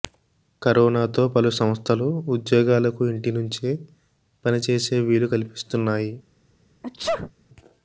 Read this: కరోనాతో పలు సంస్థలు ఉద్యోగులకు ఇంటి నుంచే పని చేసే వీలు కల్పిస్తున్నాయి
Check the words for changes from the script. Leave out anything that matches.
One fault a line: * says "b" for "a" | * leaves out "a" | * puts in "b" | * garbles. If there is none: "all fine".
all fine